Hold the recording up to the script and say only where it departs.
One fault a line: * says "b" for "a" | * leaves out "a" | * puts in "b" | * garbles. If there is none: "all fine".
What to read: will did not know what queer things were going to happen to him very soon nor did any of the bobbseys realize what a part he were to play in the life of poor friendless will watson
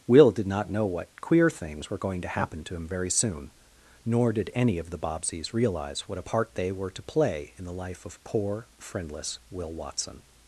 * says "they" for "he"